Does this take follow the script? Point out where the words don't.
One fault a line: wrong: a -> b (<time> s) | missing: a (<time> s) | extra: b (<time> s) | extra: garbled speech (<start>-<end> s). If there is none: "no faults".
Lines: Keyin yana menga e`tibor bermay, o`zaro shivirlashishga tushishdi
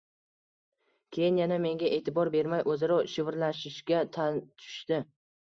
no faults